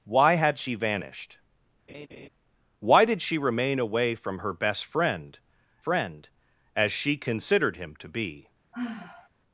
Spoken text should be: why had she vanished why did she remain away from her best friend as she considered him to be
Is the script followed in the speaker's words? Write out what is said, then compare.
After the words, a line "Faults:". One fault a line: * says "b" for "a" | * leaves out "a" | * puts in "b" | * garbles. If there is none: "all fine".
why had she vanished why did she remain away from her best friend friend as she considered him to be
Faults:
* puts in "friend"